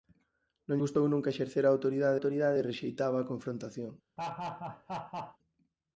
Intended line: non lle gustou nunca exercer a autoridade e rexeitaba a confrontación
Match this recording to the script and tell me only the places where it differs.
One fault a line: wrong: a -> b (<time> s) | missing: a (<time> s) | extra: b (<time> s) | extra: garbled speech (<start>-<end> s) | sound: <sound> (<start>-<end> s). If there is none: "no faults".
missing: lle (0.8 s)
extra: autoridade (2.2 s)
sound: laugh (4.2-5.4 s)